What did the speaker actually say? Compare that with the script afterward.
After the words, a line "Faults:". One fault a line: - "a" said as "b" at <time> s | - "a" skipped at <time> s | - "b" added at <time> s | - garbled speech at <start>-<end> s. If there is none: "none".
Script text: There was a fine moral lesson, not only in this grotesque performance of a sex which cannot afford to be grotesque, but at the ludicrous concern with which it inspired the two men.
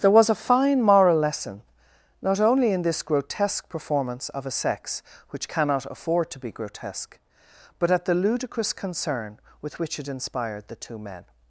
There was a fine moral lesson, not only in this grotesque performance of a sex which cannot afford to be grotesque, but at the ludicrous concern with which it inspired the two men.
Faults:
none